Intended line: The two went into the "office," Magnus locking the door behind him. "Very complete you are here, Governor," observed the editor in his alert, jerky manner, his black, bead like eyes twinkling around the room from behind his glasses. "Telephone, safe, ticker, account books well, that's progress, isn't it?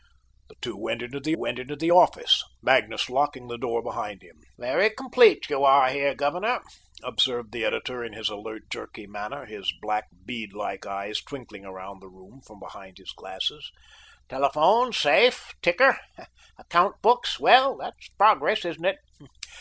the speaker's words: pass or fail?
fail